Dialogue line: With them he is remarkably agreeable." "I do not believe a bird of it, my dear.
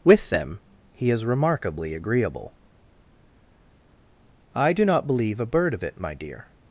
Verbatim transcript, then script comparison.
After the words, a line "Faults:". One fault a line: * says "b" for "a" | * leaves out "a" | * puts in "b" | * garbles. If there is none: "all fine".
With them he is remarkably agreeable." "I do not believe a bird of it, my dear.
Faults:
all fine